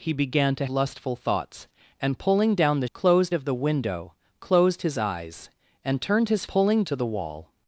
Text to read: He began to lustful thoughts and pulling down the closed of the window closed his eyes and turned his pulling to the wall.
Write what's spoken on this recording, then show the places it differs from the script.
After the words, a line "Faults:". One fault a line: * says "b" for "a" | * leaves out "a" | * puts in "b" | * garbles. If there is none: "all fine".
He began to lustful thoughts and pulling down the closed of the window closed his eyes and turned his pulling to the wall.
Faults:
all fine